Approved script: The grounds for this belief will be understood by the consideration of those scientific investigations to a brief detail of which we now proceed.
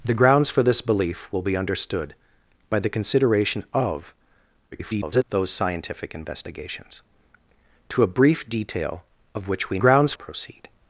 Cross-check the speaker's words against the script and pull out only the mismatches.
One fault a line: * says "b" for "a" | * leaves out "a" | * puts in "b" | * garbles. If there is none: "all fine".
* garbles
* says "grounds" for "now"